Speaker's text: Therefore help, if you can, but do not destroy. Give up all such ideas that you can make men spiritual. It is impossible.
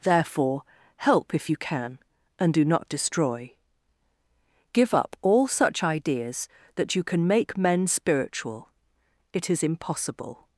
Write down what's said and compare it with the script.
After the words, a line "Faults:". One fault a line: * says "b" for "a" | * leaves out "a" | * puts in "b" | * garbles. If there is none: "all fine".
Therefore help, if you can, and do not destroy. Give up all such ideas that you can make men spiritual. It is impossible.
Faults:
* says "and" for "but"